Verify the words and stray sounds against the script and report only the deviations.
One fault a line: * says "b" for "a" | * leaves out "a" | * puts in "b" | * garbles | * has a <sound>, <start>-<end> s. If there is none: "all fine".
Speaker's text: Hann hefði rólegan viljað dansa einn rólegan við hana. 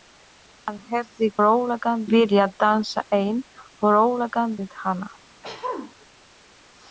* has a throat clearing, 5.4-5.9 s